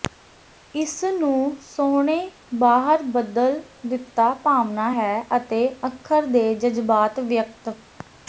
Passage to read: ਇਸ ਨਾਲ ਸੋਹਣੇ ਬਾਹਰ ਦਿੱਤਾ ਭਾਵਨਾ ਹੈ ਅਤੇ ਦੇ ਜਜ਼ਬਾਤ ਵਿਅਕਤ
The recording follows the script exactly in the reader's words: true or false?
false